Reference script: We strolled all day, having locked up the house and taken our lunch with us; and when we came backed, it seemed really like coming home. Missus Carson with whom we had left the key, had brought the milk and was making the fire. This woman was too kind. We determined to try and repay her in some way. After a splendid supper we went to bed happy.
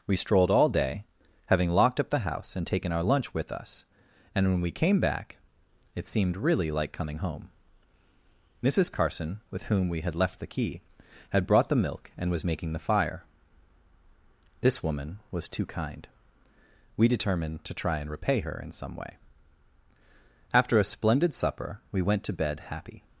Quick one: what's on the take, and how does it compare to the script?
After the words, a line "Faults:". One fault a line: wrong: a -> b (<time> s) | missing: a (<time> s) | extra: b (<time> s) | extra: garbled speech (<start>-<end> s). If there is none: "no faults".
We strolled all day, having locked up the house and taken our lunch with us; and when we came back, it seemed really like coming home. Missus Carson with whom we had left the key, had brought the milk and was making the fire. This woman was too kind. We determined to try and repay her in some way. After a splendid supper we went to bed happy.
Faults:
wrong: backed -> back (5.0 s)